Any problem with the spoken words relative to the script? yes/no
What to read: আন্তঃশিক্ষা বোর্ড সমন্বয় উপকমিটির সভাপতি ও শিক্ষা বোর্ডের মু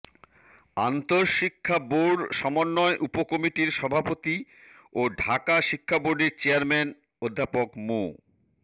yes